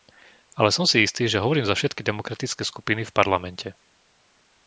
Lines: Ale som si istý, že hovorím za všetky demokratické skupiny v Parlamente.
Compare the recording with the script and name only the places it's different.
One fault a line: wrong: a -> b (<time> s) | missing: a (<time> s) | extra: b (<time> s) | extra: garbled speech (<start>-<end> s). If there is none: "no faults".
no faults